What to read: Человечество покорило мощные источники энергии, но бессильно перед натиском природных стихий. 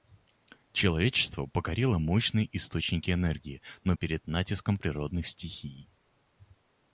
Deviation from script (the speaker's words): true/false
true